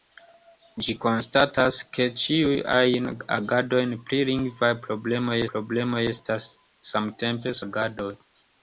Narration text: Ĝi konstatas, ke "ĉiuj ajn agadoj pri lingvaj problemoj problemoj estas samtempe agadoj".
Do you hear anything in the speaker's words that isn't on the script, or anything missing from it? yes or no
no